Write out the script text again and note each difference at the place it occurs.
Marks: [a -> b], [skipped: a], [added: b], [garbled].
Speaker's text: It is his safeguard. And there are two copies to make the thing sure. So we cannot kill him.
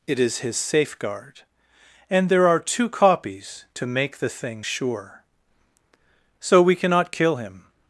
It is his safeguard. And there are two copies to make the thing sure. So we cannot kill him.